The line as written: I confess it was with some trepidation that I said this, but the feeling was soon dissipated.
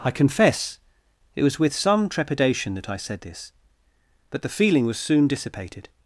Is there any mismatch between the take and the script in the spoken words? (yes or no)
no